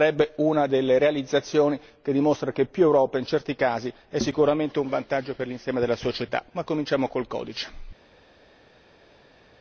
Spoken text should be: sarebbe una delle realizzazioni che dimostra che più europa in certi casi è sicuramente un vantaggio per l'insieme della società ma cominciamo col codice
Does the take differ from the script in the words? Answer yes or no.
no